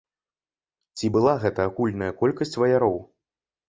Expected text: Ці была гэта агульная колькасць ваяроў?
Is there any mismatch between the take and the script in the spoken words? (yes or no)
no